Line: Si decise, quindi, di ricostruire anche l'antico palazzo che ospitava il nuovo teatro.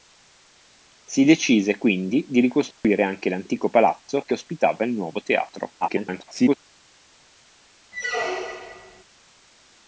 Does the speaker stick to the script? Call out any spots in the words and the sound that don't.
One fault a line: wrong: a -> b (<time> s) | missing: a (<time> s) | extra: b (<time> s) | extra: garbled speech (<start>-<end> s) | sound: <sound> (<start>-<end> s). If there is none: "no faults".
sound: dropout (2.7-2.8 s)
extra: garbled speech (5.8-6.6 s)
sound: squeak (7.9-9.0 s)